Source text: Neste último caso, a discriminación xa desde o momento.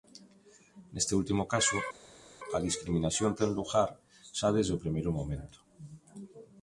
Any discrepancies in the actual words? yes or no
yes